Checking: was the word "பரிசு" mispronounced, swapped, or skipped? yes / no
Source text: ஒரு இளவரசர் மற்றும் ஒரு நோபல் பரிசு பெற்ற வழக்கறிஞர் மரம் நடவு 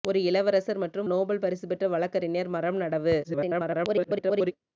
no